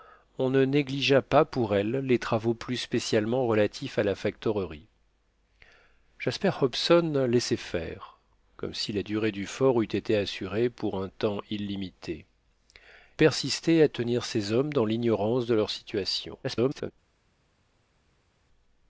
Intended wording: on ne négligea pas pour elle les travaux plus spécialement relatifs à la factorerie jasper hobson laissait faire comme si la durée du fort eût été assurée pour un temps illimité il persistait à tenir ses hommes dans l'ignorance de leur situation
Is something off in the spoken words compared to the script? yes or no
yes